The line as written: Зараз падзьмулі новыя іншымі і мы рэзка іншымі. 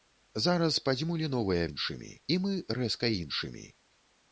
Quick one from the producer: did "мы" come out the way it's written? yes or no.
yes